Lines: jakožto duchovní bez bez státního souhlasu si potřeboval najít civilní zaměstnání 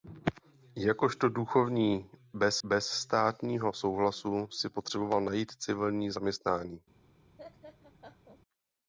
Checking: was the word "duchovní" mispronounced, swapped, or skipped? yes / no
no